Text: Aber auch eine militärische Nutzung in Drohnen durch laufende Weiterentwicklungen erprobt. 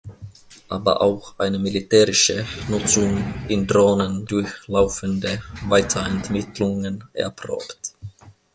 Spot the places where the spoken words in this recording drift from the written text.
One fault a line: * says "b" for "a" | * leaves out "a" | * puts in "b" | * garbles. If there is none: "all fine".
all fine